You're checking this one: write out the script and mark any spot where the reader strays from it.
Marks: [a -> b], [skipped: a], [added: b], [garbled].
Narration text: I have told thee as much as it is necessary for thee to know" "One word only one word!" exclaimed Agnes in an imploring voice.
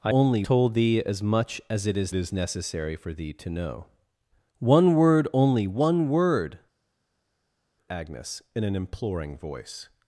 I [have -> only] told thee as much as it is [added: is] necessary for thee to know" "One word only one word!" [skipped: exclaimed] Agnes in an imploring voice.